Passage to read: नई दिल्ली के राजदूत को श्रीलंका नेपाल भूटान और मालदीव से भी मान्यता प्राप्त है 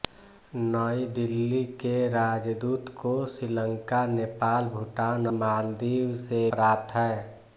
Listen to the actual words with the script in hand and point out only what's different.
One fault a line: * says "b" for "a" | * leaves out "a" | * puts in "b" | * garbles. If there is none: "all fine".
* leaves out "और"
* leaves out "भी मान्यता"